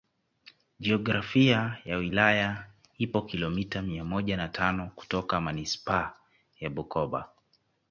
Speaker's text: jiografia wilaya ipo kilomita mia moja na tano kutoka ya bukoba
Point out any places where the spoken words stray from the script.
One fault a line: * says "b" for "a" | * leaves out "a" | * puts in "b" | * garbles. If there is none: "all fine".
* puts in "ya"
* puts in "manispaa"